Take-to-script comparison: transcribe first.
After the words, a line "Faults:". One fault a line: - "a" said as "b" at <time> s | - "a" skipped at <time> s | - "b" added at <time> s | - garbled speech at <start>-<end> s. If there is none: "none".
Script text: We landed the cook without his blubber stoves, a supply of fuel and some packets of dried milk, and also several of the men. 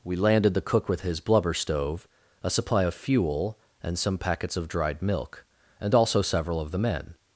We landed the cook with his blubber stove, a supply of fuel and some packets of dried milk, and also several of the men.
Faults:
- "without" said as "with" at 0.9 s
- "stoves" said as "stove" at 1.5 s